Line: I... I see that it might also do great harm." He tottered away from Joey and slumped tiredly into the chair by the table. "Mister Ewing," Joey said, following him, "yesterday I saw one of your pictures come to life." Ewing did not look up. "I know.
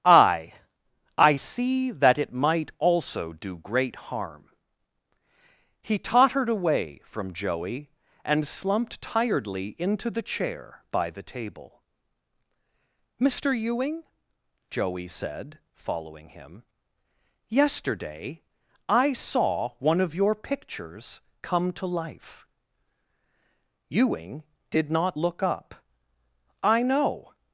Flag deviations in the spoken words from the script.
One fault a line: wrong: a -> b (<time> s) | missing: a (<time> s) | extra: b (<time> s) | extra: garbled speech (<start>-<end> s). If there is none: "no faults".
no faults